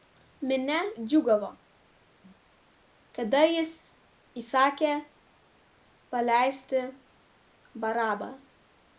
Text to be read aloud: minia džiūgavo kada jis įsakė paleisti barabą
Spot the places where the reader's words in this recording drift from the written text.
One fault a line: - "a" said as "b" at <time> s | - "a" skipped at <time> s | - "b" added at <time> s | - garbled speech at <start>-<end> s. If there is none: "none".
none